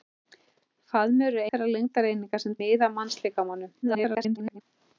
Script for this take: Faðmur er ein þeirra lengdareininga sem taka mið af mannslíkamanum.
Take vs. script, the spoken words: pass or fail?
fail